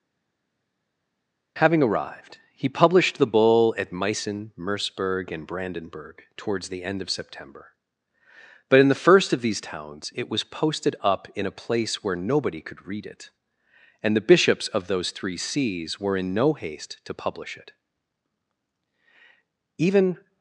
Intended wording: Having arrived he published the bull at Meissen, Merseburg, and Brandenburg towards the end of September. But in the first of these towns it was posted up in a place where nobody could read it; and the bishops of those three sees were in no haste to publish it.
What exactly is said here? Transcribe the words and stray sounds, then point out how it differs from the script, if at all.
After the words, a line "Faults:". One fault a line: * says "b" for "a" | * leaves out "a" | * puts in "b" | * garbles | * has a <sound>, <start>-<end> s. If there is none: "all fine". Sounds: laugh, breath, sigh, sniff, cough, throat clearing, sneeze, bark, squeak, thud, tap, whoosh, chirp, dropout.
Having arrived he published the bull at Meissen, Merseburg, and Brandenburg towards the end of September. But in the first of these towns it was posted up in a place where nobody could read it; and the bishops of those three sees were in no haste to publish it. Even
Faults:
* puts in "Even"